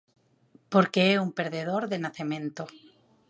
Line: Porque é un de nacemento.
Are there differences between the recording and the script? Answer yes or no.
yes